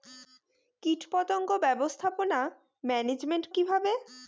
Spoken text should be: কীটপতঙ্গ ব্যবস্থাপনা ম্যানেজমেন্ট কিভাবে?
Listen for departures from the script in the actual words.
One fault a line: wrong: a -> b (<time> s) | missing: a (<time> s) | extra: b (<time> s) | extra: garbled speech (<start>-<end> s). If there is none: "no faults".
no faults